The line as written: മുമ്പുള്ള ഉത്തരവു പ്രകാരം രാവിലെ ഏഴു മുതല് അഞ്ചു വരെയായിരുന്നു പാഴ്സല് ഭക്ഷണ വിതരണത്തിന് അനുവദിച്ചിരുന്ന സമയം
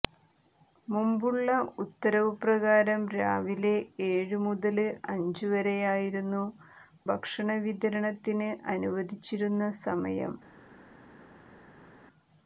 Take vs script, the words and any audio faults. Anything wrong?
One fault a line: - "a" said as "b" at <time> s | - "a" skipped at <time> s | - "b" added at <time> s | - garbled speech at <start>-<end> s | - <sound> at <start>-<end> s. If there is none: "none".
- "പാഴ്സല്" skipped at 6.4 s